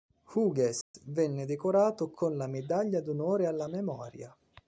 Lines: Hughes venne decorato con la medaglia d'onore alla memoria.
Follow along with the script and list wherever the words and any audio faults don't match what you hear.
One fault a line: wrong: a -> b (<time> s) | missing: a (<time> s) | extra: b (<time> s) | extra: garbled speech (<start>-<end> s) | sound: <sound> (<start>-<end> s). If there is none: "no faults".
sound: dropout (0.8-0.9 s)